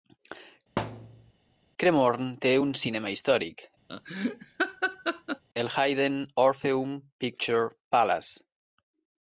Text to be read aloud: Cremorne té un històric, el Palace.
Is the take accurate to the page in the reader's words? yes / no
no